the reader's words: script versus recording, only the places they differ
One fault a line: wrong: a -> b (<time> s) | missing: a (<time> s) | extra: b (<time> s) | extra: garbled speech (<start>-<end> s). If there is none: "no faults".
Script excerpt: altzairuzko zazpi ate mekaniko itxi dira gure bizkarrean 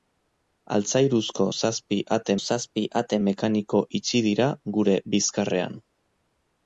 extra: zazpi ate (2.4 s)